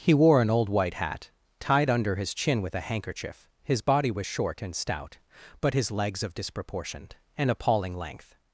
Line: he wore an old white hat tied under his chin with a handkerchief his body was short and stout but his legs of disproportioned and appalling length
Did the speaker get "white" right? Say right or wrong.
right